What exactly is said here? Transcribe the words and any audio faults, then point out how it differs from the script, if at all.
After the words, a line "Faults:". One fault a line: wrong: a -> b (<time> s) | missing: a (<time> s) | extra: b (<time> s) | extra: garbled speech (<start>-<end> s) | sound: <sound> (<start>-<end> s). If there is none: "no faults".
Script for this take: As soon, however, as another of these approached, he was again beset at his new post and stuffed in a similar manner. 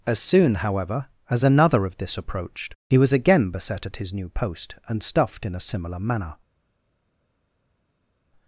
As soon, however, as another of this approached, he was again beset at his new post and stuffed in a similar manner.
Faults:
wrong: these -> this (2.0 s)